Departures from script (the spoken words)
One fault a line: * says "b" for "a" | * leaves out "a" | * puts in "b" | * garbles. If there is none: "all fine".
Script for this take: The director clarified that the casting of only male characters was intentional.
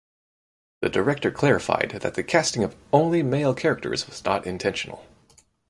* puts in "not"